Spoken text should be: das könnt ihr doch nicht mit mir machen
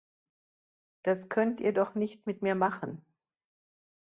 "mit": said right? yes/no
yes